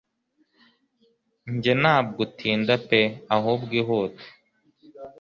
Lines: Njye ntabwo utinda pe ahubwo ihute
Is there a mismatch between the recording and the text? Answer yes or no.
no